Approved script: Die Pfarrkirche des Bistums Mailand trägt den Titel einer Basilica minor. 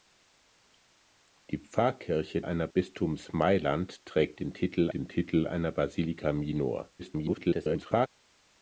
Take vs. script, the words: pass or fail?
fail